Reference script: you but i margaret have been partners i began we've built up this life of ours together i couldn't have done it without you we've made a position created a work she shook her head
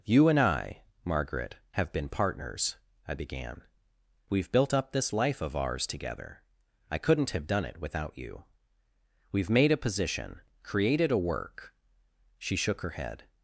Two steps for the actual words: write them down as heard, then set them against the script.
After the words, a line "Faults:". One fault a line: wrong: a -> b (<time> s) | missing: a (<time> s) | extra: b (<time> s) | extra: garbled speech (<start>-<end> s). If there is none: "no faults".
you and i margaret have been partners i began we've built up this life of ours together i couldn't have done it without you we've made a position created a work she shook her head
Faults:
wrong: but -> and (0.3 s)